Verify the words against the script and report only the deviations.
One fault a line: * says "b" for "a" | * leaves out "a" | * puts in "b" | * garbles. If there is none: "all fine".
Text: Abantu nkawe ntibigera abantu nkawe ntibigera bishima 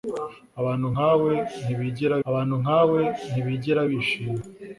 all fine